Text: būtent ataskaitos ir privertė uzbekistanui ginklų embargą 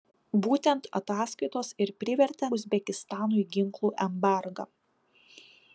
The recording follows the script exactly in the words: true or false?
true